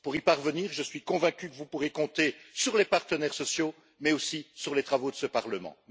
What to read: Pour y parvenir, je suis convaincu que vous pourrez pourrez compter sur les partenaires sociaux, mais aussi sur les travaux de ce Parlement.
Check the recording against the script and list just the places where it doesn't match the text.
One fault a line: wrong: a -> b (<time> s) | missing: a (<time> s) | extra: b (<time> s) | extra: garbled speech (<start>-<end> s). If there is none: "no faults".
missing: pourrez (1.9 s)